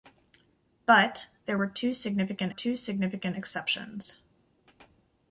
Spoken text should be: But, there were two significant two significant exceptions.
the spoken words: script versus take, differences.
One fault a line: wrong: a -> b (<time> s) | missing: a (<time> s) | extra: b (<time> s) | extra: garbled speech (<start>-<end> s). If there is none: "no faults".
no faults